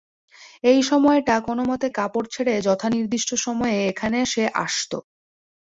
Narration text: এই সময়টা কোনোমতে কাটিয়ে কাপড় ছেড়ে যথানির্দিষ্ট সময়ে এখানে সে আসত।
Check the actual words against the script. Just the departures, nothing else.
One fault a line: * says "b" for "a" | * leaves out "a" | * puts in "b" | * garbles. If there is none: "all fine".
* leaves out "কাটিয়ে"